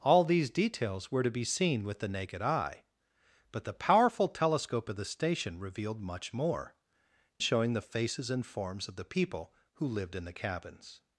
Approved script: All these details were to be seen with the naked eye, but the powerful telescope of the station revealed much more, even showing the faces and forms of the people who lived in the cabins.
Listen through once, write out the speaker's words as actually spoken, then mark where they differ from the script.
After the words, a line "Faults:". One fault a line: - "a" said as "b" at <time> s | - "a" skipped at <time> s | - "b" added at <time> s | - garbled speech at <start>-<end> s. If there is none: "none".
All these details were to be seen with the naked eye, but the powerful telescope of the station revealed much more, showing the faces and forms of the people who lived in the cabins.
Faults:
- "even" skipped at 6.8 s